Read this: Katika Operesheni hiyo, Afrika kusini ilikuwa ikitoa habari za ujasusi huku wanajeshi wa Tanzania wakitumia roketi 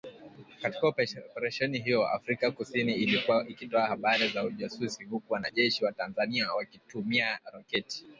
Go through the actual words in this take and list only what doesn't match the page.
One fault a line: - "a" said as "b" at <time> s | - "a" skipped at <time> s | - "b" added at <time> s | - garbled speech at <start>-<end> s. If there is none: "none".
none